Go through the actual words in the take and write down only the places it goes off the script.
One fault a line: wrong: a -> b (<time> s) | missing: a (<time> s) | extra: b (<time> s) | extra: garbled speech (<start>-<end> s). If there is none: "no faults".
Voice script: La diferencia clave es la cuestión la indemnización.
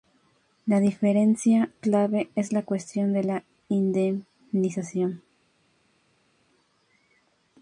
extra: de (3.1 s)